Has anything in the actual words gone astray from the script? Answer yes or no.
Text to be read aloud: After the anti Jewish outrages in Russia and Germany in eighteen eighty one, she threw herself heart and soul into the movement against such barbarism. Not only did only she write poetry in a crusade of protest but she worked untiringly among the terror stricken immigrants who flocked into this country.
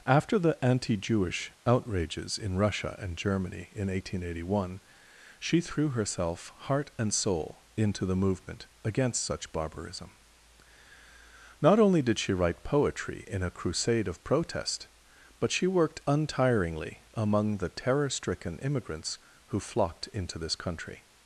yes